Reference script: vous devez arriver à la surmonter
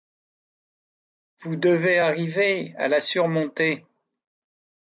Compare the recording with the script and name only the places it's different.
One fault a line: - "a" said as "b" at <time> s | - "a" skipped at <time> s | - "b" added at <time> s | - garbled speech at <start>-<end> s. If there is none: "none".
none